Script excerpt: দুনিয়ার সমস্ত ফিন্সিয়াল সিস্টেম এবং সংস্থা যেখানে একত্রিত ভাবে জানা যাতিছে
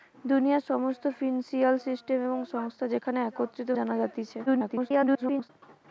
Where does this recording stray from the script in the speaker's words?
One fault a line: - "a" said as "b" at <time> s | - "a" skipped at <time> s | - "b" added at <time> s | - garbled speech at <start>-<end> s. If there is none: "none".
- "ভাবে" skipped at 3.7 s
- garbled speech at 4.5-5.5 s